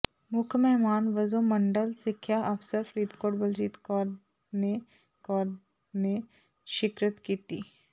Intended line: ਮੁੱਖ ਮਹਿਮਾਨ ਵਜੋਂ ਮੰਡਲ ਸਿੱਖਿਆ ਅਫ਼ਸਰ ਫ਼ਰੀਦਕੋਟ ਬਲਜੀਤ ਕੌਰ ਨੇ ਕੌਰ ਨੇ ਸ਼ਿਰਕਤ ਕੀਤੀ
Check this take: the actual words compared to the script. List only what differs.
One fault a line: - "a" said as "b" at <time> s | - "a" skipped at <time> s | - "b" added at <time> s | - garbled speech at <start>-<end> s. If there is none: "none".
none